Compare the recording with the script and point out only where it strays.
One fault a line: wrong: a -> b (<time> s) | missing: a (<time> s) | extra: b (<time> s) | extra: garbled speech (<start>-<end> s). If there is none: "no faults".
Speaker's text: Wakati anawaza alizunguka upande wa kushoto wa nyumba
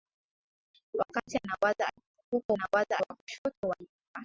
wrong: upande -> anawaza (2.5 s)